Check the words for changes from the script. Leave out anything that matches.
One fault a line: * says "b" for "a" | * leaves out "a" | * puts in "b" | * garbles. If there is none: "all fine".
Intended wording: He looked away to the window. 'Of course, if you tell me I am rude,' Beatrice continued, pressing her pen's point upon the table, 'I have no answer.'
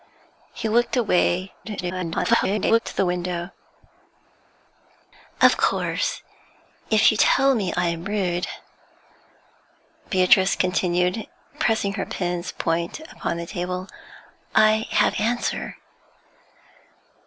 * garbles
* leaves out "no"